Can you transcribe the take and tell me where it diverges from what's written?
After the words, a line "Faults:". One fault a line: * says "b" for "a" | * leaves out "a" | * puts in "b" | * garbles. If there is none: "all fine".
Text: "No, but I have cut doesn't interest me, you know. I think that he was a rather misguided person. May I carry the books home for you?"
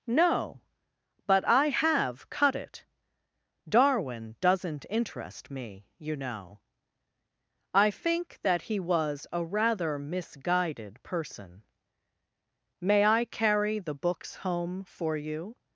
"No, but I have cut it. Darwin doesn't interest me, you know. I think that he was a rather misguided person. May I carry the books home for you?"
Faults:
* puts in "it Darwin"